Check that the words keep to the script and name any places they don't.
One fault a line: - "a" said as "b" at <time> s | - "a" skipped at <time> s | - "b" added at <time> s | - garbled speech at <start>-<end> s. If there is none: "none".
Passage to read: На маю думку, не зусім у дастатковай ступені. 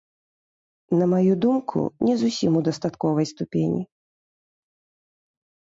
none